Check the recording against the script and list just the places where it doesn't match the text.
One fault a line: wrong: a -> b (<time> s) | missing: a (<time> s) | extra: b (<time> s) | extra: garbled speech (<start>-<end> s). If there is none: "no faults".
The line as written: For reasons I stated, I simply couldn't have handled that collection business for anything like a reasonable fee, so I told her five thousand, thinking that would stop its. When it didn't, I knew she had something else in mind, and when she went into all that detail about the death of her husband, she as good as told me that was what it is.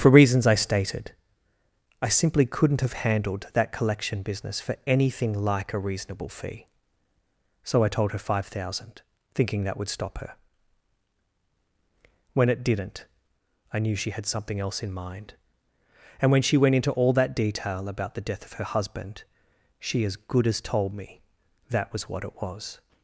wrong: its -> her (10.2 s)
wrong: is -> was (22.4 s)